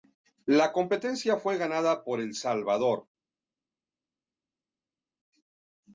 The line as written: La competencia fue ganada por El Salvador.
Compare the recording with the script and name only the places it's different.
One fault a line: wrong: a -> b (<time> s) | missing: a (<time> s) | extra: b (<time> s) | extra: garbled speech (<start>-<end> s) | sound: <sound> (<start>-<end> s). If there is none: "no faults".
no faults